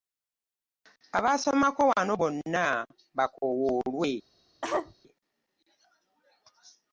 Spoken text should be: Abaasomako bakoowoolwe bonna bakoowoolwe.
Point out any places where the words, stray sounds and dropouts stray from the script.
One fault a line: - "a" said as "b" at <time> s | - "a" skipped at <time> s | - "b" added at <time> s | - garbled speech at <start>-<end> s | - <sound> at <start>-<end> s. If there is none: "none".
- "bakoowoolwe" said as "wano" at 1.9 s
- cough at 4.6-4.9 s